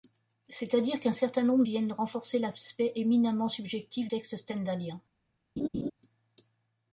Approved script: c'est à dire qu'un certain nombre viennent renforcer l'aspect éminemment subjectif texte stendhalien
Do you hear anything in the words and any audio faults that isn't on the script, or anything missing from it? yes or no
yes